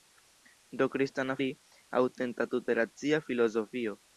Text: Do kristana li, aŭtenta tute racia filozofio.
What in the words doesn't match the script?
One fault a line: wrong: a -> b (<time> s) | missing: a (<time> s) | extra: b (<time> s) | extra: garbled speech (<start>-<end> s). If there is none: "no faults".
no faults